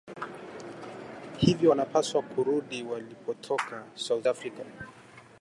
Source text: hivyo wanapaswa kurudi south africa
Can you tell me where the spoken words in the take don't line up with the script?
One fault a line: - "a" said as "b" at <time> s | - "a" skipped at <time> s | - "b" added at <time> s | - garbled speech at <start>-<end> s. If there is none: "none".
- "walipotoka" added at 2.8 s